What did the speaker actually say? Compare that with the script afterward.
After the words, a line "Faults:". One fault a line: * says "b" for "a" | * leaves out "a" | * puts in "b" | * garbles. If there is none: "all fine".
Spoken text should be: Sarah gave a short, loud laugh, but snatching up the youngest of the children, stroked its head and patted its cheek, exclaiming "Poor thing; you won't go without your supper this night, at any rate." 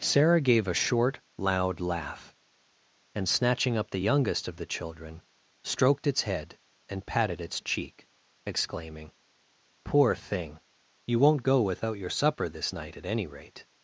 Sarah gave a short, loud laugh, and snatching up the youngest of the children, stroked its head and patted its cheek, exclaiming "Poor thing; you won't go without your supper this night, at any rate."
Faults:
* says "and" for "but"